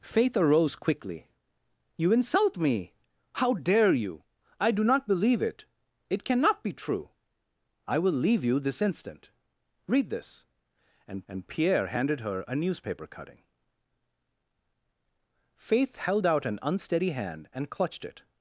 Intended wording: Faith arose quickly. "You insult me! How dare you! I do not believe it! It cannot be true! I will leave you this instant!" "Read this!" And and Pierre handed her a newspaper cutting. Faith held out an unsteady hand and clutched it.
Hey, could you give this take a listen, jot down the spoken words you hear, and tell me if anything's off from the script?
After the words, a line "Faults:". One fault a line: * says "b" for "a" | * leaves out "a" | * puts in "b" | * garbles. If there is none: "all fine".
Faith arose quickly. "You insult me! How dare you! I do not believe it! It cannot be true! I will leave you this instant!" "Read this!" And and Pierre handed her a newspaper cutting. Faith held out an unsteady hand and clutched it.
Faults:
all fine